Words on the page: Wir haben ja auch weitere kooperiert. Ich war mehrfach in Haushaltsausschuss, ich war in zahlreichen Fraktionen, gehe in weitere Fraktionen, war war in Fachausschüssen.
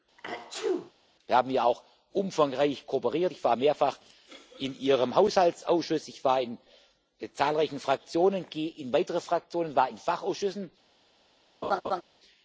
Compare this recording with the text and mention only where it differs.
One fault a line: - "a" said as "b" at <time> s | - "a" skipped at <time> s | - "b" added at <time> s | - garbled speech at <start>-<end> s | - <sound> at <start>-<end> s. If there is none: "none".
- sneeze at 0.2-0.9 s
- "weitere" said as "umfangreich" at 2.1 s
- "Ihrem" added at 4.8 s
- "war" skipped at 9.9 s
- laugh at 11.6-12.0 s